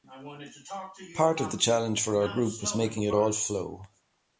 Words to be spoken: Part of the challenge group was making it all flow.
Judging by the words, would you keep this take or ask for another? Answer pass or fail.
fail